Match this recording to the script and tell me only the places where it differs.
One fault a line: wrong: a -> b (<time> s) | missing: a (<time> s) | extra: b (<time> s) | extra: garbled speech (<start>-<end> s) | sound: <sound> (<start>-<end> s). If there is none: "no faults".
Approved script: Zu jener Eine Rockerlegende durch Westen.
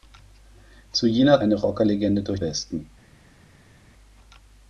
no faults